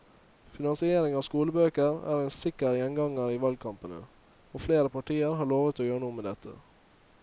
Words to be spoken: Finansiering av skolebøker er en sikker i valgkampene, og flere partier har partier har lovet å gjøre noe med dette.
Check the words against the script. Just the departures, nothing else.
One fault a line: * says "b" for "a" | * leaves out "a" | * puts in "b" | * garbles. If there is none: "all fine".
* puts in "gjenganger"
* leaves out "partier har"